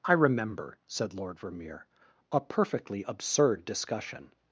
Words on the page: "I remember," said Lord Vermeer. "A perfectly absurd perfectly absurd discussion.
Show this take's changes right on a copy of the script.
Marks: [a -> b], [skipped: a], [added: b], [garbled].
"I remember," said Lord Vermeer. "A perfectly absurd [skipped: perfectly absurd] discussion.